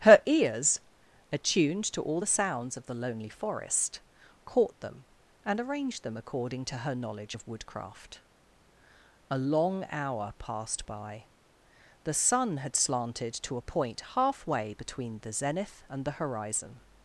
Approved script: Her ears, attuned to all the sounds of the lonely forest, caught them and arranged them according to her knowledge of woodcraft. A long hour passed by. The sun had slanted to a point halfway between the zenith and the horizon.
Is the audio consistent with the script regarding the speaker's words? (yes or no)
yes